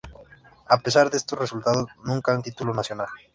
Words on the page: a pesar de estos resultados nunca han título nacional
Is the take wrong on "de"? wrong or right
right